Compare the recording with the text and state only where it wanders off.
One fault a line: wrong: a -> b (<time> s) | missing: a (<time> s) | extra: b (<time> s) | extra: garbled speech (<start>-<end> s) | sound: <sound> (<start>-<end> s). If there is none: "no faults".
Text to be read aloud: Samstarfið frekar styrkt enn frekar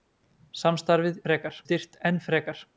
no faults